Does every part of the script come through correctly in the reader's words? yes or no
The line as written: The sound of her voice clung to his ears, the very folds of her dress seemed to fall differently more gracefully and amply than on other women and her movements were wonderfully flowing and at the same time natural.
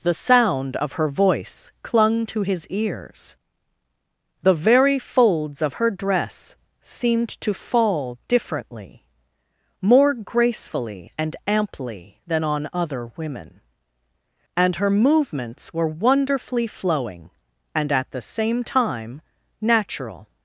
yes